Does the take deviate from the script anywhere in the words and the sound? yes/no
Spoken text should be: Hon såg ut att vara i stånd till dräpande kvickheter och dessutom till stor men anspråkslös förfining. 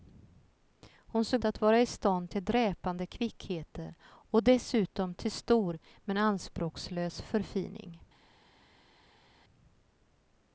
yes